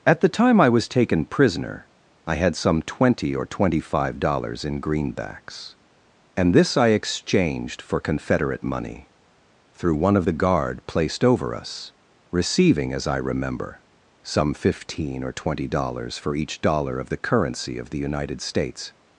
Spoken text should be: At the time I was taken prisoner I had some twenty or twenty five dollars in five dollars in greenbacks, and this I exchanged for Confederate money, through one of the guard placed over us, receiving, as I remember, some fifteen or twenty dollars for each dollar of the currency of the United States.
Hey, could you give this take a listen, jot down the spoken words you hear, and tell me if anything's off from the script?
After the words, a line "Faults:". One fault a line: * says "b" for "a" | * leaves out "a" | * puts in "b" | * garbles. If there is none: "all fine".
At the time I was taken prisoner I had some twenty or twenty five dollars in greenbacks, and this I exchanged for Confederate money, through one of the guard placed over us, receiving, as I remember, some fifteen or twenty dollars for each dollar of the currency of the United States.
Faults:
* leaves out "five dollars in"